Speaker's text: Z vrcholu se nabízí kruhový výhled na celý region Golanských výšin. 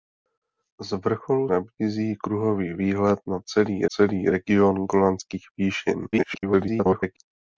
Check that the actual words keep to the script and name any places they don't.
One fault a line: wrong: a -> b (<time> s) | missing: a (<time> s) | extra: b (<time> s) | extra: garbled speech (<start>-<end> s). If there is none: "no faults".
missing: se (1.5 s)
extra: celý (3.9 s)
extra: garbled speech (6.1-7.2 s)